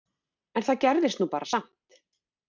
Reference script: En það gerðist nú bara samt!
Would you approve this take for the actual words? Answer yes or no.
yes